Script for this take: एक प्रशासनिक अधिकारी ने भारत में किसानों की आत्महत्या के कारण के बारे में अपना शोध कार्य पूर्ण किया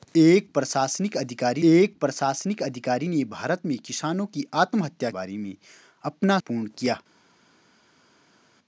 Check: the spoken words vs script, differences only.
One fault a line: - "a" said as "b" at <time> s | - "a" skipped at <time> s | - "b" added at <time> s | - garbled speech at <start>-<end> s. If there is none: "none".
- "एक प्रशासनिक अधिकारी" added at 1.6 s
- "के कारण के" skipped at 5.1 s
- "शोध कार्य" skipped at 6.4 s